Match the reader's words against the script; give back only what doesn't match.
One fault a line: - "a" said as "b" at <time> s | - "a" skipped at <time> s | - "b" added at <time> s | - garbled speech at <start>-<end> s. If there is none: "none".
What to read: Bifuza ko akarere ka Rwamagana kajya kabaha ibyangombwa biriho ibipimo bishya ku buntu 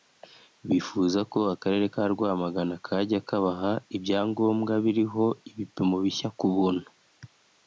none